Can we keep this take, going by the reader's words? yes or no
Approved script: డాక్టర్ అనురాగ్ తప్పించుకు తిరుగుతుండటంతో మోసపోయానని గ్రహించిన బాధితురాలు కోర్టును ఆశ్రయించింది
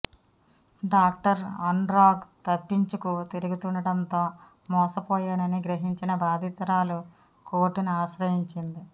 yes